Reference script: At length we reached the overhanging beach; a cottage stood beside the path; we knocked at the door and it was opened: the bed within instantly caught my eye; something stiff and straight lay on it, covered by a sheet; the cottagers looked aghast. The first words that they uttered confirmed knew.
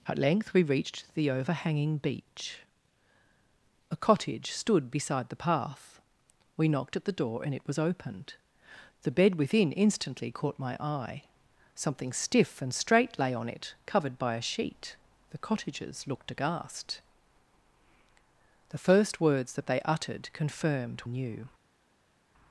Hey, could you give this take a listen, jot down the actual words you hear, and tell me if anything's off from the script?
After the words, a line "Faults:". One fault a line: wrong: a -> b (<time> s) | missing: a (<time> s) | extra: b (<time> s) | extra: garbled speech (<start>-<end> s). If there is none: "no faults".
At length we reached the overhanging beach; a cottage stood beside the path; we knocked at the door and it was opened: the bed within instantly caught my eye; something stiff and straight lay on it, covered by a sheet; the cottagers looked aghast. The first words that they uttered confirmed knew.
Faults:
no faults